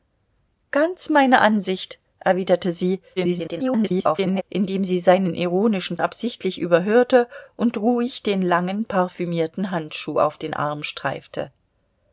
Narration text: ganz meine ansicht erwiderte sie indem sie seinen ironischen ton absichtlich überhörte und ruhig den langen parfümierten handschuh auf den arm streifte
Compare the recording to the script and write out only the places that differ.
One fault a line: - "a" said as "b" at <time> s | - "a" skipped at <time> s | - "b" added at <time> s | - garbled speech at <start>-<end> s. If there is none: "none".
- garbled speech at 3.2-4.4 s
- "ton" skipped at 6.0 s